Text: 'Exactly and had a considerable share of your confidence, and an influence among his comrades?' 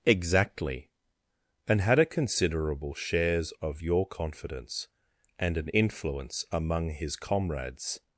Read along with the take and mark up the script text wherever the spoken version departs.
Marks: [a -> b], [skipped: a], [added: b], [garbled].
'Exactly and had a considerable [share -> shares] of your confidence, and an influence among his comrades?'